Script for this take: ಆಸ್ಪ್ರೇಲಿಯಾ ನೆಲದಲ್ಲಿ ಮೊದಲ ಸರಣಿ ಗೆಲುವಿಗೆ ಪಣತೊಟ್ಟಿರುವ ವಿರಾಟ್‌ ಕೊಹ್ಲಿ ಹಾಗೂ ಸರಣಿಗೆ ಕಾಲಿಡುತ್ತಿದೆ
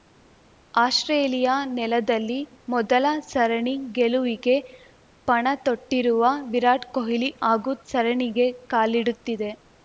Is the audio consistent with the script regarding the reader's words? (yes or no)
yes